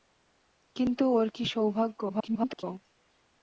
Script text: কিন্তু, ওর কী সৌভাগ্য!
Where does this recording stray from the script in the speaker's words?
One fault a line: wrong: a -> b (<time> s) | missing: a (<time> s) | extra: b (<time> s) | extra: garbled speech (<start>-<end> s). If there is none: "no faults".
extra: garbled speech (2.1-2.6 s)